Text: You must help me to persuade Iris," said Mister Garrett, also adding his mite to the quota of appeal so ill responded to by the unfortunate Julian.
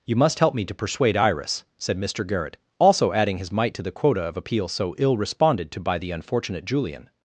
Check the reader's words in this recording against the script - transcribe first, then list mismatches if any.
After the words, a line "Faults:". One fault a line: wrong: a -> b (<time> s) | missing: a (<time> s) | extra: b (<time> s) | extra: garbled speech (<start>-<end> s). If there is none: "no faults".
You must help me to persuade Iris," said Mister Garrett, also adding his mite to the quota of appeal so ill responded to by the unfortunate Julian.
Faults:
no faults